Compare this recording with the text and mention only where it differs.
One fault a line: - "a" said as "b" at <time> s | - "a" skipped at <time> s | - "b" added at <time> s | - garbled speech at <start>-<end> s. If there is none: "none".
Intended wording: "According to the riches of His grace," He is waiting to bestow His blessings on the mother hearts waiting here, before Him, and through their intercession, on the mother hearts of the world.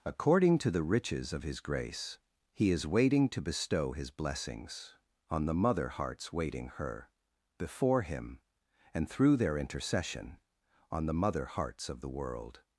- "here" said as "her" at 6.7 s